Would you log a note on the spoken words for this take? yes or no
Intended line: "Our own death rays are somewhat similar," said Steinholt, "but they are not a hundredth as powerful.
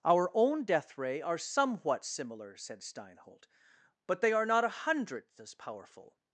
yes